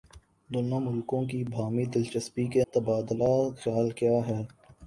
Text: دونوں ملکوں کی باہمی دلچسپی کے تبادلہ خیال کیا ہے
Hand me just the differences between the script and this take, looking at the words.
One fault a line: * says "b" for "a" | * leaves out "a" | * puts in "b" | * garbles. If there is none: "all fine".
all fine